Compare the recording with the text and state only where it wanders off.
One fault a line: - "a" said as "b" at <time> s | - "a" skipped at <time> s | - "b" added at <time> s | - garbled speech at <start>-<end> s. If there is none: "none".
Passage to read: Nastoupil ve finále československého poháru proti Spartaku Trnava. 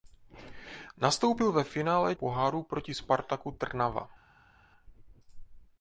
- "československého" skipped at 2.1 s